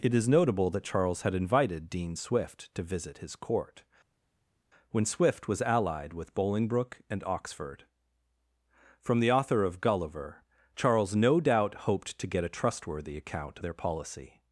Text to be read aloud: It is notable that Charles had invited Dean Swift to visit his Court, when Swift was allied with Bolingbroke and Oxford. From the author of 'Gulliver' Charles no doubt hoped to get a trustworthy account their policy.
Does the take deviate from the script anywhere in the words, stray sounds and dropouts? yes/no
no